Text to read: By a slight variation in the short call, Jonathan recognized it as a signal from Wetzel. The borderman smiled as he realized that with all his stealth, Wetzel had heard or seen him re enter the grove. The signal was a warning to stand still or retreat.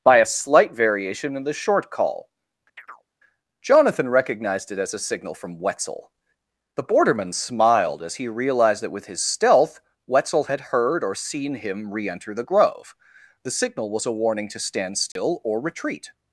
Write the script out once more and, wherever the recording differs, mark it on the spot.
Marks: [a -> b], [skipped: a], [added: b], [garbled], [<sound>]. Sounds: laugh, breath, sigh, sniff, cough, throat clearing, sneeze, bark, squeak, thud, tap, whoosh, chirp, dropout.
By a slight variation in the short call, [chirp] Jonathan recognized it as a signal from Wetzel. The borderman smiled as he realized that with [skipped: all] his stealth, Wetzel had heard or seen him re enter the grove. The signal was a warning to stand still [dropout] or retreat.